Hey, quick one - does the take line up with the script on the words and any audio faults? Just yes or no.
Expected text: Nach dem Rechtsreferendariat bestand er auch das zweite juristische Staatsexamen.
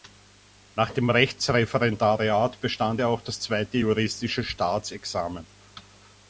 yes